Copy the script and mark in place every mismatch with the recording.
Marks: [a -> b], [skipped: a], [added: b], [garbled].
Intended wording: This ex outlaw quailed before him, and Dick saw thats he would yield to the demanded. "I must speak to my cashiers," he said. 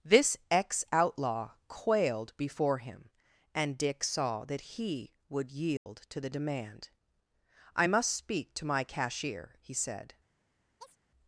This ex outlaw quailed before him, and Dick saw [thats -> that] he would yield to the [demanded. -> demand] "I must speak to my [cashiers," -> cashier] he said.